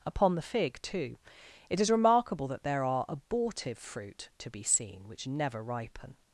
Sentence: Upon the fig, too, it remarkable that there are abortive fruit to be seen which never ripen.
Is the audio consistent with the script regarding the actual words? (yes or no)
no